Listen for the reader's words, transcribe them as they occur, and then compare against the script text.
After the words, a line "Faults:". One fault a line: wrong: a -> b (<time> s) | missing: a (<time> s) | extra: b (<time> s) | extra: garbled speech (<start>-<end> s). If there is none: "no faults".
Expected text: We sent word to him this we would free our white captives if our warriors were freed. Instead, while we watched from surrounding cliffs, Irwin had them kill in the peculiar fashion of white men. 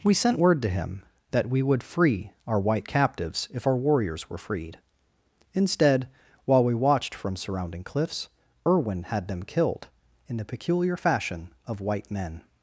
We sent word to him that we would free our white captives if our warriors were freed. Instead, while we watched from surrounding cliffs, Irwin had them killed in the peculiar fashion of white men.
Faults:
wrong: this -> that (1.3 s)
wrong: kill -> killed (9.4 s)